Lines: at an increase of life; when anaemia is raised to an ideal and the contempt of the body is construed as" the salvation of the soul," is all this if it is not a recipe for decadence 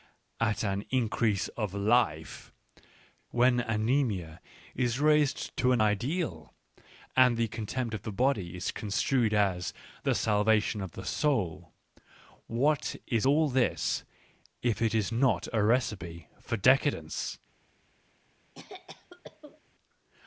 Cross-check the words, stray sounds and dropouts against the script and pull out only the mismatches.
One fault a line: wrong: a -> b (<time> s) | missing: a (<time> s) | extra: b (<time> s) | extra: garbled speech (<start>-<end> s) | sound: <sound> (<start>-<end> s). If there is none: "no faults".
extra: what (12.4 s)
sound: cough (18.6-19.6 s)